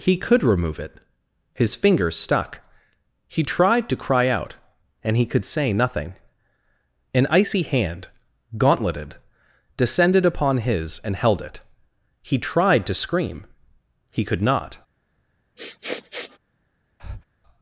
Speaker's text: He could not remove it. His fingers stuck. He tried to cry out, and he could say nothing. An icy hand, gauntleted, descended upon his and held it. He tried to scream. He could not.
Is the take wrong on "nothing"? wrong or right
right